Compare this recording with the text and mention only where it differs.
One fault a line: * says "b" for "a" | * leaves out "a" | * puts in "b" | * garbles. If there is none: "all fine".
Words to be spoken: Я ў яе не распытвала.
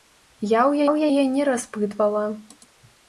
* puts in "ў"